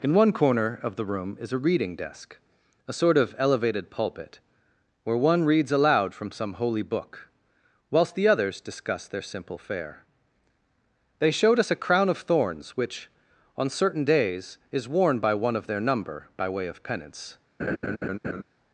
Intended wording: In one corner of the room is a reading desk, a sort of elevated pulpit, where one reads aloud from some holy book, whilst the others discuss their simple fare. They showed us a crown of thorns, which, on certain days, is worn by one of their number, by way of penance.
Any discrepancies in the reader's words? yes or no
no